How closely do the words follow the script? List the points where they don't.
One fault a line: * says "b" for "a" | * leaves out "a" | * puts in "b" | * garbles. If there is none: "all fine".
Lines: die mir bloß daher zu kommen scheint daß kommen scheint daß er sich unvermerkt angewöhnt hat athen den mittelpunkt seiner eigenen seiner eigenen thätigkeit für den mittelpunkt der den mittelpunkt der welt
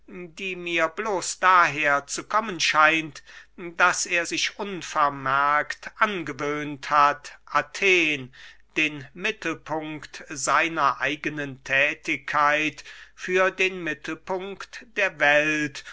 * leaves out "kommen scheint daß"
* leaves out "seiner eigenen"
* leaves out "den mittelpunkt der"